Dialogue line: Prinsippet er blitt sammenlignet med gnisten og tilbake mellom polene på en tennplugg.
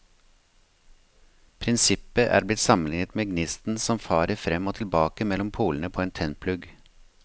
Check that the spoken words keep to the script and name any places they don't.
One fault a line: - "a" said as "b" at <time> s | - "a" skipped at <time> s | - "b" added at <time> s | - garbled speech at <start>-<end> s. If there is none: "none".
- "som farer frem" added at 3.8 s